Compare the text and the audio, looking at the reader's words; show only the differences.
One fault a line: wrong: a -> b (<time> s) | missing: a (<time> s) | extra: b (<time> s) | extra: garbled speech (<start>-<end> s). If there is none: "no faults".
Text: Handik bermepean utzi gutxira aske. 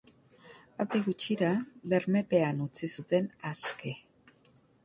extra: gutxira (1.1 s)
wrong: gutxira -> zuten (3.0 s)